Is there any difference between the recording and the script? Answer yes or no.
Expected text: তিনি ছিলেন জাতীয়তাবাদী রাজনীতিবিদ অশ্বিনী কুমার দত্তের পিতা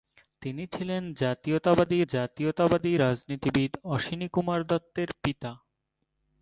yes